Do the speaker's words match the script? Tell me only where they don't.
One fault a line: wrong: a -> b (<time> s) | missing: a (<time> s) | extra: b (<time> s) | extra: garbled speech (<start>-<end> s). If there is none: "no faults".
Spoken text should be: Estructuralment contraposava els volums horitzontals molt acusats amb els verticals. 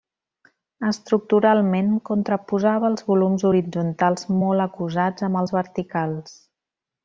no faults